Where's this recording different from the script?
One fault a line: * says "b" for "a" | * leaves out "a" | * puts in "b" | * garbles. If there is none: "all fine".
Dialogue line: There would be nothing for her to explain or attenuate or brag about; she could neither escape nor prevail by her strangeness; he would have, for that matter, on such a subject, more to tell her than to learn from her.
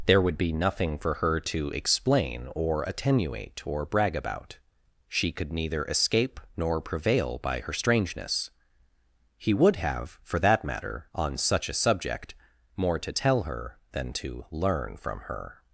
all fine